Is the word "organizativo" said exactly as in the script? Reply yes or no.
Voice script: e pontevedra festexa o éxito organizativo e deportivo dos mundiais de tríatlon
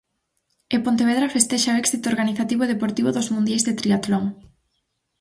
yes